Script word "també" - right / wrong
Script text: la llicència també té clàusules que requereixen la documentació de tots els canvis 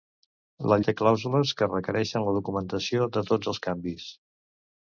wrong